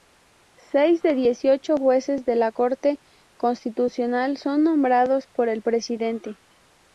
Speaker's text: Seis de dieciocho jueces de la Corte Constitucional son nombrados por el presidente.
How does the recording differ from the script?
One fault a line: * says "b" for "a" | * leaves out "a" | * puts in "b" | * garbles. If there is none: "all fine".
all fine